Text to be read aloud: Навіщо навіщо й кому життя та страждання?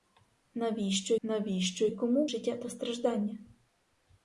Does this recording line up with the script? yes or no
yes